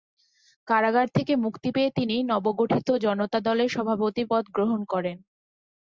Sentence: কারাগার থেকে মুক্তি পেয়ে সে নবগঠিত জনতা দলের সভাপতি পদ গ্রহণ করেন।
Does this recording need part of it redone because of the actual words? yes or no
yes